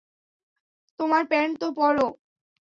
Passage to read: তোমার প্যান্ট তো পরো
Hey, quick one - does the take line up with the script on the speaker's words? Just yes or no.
yes